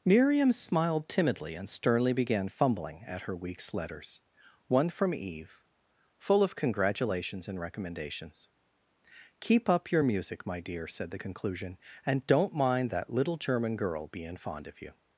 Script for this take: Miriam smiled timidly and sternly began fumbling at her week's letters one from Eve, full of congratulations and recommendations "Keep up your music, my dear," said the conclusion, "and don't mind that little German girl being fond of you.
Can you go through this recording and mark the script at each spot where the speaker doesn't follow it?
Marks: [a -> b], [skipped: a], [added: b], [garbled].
Miriam smiled timidly and sternly began fumbling at her week's letters one from Eve, full of congratulations and recommendations "Keep up your music, my dear," said the conclusion, "and don't mind that little German girl being fond of you.